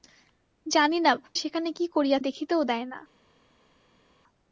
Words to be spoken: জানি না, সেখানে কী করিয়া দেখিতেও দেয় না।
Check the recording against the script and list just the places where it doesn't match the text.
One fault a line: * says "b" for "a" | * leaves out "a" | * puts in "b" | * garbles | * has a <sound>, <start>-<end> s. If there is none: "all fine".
all fine